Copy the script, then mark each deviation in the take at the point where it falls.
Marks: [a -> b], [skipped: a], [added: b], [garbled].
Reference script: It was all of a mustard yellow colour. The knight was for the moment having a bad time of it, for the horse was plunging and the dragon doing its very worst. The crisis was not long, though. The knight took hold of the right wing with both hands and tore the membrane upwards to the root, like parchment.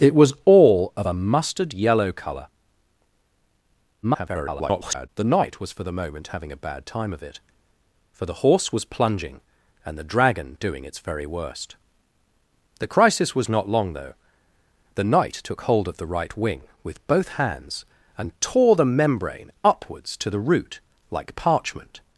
It was all of a mustard yellow colour. [garbled] The knight was for the moment having a bad time of it, for the horse was plunging and the dragon doing its very worst. The crisis was not long, though. The knight took hold of the right wing with both hands and tore the membrane upwards to the root, like parchment.